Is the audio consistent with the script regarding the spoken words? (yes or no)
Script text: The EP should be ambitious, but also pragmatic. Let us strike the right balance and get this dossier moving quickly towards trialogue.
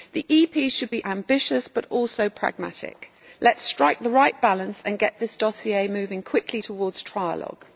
yes